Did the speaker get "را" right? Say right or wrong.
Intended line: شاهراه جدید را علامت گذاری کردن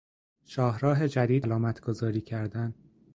wrong